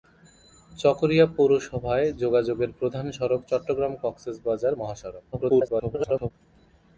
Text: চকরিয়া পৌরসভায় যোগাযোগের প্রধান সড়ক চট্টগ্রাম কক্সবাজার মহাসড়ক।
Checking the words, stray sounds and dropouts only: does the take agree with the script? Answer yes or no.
no